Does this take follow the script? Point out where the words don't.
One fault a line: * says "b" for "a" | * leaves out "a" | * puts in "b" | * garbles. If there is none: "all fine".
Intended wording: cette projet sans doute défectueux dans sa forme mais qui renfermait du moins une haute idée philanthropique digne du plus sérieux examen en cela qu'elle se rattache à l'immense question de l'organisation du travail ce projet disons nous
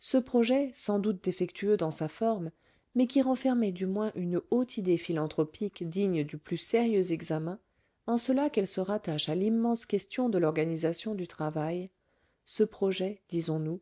* says "ce" for "cette"